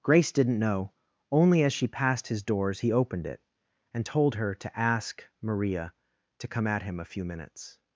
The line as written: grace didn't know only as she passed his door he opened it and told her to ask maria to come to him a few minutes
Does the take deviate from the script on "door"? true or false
true